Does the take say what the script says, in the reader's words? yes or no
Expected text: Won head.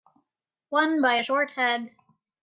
no